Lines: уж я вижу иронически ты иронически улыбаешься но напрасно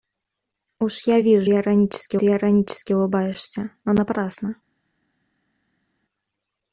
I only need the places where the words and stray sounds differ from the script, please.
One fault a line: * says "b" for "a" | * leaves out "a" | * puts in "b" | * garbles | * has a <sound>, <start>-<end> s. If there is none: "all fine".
all fine